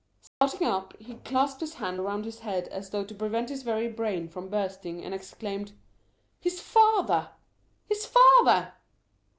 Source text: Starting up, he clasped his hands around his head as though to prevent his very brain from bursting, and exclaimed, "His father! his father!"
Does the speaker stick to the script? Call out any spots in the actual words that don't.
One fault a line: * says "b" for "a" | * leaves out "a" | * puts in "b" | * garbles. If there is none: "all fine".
all fine